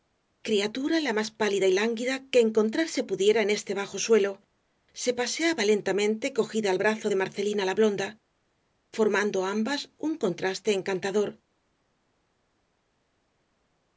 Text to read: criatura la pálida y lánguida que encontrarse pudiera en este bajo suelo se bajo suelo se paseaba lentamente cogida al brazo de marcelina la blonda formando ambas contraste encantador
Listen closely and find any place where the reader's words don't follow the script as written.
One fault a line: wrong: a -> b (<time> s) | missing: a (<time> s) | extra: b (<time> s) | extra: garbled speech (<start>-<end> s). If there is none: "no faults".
extra: más (1.1 s)
missing: bajo suelo se (5.1 s)
extra: un (10.0 s)